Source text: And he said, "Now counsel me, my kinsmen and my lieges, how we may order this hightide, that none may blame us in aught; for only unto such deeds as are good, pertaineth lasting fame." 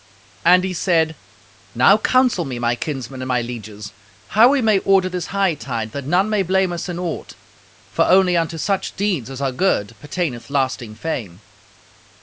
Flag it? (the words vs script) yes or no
no